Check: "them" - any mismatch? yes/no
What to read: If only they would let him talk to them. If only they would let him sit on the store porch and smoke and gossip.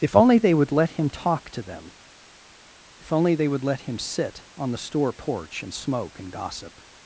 no